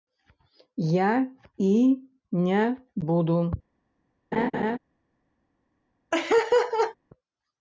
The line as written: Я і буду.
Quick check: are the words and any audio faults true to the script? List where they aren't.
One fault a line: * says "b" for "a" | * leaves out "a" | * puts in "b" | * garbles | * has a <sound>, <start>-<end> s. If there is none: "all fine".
* puts in "не"
* has a laugh, 4.3-4.8 s
* has a laugh, 6.1-7.0 s